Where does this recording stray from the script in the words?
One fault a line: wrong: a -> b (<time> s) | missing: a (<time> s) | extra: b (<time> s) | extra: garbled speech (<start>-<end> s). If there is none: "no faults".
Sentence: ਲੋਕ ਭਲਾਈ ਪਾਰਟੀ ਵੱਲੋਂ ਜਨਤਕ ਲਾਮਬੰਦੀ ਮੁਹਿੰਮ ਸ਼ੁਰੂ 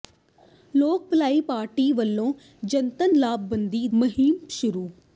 no faults